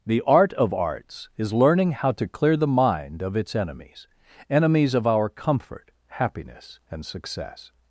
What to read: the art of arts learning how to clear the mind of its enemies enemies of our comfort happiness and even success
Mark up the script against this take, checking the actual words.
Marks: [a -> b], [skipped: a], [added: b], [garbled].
the art of arts [added: is] learning how to clear the mind of its enemies enemies of our comfort happiness and [skipped: even] success